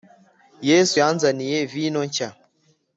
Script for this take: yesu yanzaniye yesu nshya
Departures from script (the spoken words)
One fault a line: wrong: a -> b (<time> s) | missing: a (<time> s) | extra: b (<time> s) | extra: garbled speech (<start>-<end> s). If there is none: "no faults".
wrong: yesu -> vino (1.7 s)